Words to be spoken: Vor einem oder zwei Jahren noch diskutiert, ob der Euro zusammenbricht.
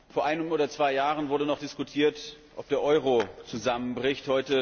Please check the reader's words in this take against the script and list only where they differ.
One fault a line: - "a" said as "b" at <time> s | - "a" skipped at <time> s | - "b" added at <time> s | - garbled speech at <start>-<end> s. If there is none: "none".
- "wurde" added at 1.3 s